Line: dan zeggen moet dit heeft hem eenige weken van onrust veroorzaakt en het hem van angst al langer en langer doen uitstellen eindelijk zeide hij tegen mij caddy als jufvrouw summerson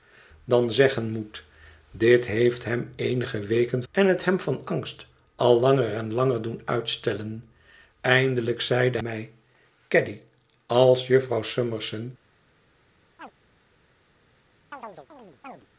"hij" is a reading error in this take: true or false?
true